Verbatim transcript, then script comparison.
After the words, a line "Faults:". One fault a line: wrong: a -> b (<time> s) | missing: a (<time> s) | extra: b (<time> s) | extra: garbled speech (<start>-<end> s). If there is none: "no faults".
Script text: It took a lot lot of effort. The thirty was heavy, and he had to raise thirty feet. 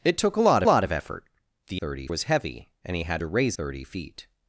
It took a lot lot of effort. The thirty was heavy, and he had to raise thirty feet.
Faults:
no faults